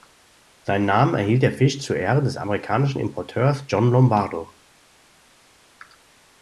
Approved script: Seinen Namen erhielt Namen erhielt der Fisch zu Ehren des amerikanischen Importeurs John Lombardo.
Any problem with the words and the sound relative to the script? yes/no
yes